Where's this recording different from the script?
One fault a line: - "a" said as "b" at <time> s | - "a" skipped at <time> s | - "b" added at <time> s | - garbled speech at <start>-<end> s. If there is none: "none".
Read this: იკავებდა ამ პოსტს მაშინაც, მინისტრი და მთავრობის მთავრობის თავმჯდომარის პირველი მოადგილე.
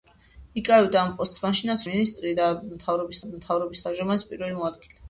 none